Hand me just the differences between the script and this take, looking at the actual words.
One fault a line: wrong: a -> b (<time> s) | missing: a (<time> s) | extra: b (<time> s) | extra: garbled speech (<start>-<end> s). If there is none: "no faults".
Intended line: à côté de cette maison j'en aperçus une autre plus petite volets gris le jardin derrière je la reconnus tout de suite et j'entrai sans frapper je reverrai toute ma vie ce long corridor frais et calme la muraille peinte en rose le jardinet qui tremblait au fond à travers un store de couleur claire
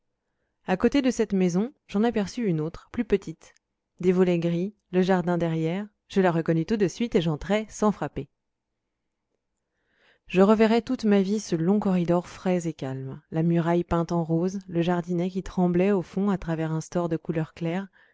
extra: des (4.0 s)